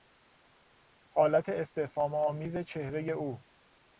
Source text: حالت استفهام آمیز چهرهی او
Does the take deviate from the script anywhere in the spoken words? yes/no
no